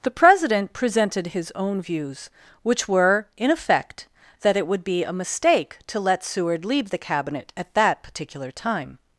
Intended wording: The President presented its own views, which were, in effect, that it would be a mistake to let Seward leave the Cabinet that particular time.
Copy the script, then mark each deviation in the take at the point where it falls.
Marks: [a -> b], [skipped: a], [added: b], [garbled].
The President presented [its -> his] own views, which were, in effect, that it would be a mistake to let Seward leave the Cabinet [added: at] that particular time.